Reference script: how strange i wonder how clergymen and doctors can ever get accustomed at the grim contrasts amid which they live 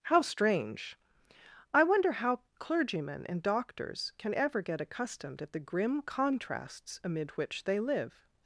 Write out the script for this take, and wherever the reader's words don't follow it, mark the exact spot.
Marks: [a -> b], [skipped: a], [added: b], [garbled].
how strange i wonder how clergymen and doctors can ever get accustomed at the grim contrasts amid which they live